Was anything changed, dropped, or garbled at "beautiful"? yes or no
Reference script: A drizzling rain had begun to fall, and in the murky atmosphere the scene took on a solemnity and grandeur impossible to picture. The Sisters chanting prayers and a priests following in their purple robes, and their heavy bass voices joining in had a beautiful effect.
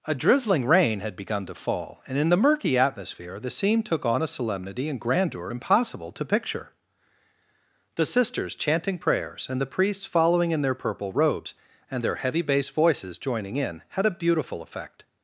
no